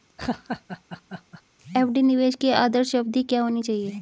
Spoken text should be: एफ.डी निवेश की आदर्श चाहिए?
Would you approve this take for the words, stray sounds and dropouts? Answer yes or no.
no